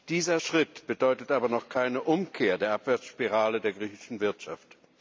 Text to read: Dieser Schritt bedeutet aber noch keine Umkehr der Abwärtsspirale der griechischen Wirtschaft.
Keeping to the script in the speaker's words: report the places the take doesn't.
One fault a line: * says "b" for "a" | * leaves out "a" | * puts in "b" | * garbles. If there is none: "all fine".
all fine